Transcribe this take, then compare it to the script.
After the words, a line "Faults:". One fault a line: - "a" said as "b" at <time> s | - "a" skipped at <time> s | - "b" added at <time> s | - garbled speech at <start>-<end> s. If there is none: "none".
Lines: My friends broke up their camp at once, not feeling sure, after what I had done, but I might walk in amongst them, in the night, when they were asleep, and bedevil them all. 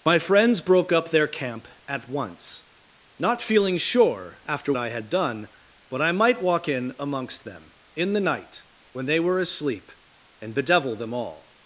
My friends broke up their camp at once, not feeling sure, after I had done, but I might walk in amongst them, in the night, when they were asleep, and bedevil them all.
Faults:
- "what" skipped at 4.7 s